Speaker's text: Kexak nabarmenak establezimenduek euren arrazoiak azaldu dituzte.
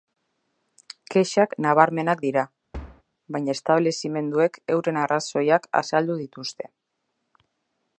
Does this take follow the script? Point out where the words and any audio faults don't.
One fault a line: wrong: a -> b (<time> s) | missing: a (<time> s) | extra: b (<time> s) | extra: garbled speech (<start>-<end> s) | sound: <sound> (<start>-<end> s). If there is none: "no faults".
extra: dira baina (2.3 s)
sound: thud (2.7-3.0 s)